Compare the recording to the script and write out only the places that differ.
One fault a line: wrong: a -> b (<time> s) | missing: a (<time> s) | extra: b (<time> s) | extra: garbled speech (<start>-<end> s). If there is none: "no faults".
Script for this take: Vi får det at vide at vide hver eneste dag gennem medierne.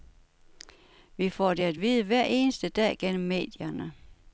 missing: at vide (2.0 s)